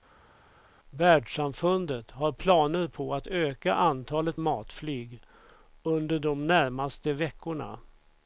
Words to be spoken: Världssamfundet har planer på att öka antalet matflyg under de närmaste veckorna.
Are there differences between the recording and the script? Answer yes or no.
no